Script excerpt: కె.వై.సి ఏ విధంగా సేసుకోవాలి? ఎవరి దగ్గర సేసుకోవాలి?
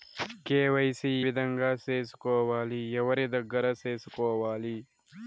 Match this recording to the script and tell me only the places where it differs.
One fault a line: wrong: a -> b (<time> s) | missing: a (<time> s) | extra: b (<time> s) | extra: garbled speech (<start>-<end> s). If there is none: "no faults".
missing: ఏ (1.1 s)